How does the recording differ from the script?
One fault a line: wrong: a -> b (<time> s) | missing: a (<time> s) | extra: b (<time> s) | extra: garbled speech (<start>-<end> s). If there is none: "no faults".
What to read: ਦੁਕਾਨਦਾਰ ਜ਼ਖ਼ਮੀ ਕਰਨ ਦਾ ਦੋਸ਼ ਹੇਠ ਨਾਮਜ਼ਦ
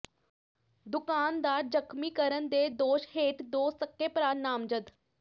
wrong: ਦਾ -> ਦੇ (2.5 s)
extra: ਦੋ ਸਕੇ ਭਰਾ (3.5 s)